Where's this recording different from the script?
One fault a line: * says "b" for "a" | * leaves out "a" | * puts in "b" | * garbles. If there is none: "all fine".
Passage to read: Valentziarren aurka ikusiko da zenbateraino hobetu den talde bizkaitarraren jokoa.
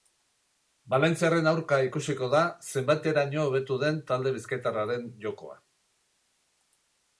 all fine